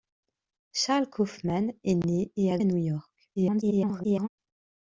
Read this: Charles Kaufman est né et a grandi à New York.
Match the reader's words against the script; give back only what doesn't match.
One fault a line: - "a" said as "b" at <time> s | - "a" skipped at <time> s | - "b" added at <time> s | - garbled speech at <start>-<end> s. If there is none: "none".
- "grandi" skipped at 2.6 s
- garbled speech at 3.3-4.3 s